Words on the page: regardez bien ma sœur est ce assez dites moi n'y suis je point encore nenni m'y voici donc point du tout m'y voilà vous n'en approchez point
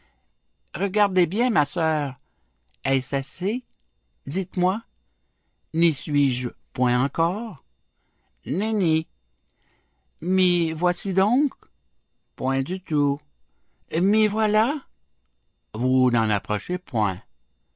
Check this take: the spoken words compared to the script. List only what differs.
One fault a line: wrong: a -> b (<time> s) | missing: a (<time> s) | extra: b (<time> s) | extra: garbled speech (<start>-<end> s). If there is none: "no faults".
no faults